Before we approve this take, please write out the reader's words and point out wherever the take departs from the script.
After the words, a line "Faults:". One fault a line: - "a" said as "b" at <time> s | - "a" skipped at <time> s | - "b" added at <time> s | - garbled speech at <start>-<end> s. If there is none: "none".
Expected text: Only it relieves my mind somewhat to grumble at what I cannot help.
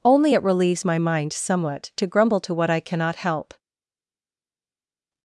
Only it relieves my mind somewhat to grumble to what I cannot help.
Faults:
- "at" said as "to" at 2.4 s